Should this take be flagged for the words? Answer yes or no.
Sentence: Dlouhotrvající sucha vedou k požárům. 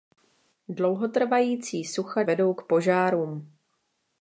no